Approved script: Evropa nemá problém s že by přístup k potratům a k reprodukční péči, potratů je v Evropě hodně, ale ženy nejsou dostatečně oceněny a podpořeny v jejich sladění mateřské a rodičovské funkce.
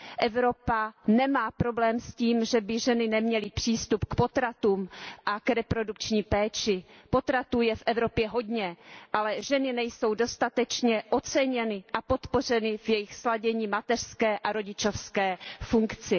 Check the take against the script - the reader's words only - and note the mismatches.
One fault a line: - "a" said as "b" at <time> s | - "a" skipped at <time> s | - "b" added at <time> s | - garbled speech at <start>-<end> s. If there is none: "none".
- "tím" added at 2.1 s
- "ženy neměly" added at 2.8 s